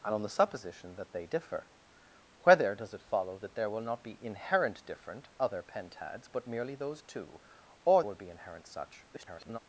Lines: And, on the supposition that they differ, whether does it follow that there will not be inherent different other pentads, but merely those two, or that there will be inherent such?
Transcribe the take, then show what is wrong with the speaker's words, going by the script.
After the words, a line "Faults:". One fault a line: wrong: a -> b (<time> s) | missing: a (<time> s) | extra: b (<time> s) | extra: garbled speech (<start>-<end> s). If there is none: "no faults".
And, on the supposition that they differ, whether does it follow that there will not be inherent different other pentads, but merely those two, or will be inherent such? [garbled]
Faults:
missing: that there (8.0 s)
extra: garbled speech (9.1-9.6 s)